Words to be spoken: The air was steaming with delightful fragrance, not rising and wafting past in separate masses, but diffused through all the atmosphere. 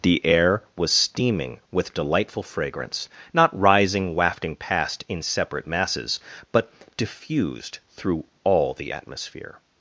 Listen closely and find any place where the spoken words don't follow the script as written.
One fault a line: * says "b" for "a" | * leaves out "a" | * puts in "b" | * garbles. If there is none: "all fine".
* leaves out "and"